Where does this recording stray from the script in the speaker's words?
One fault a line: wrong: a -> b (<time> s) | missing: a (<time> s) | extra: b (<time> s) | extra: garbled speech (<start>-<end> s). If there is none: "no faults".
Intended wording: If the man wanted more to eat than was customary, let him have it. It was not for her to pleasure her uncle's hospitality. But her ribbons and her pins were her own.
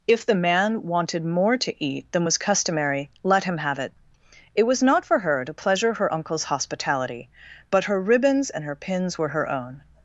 no faults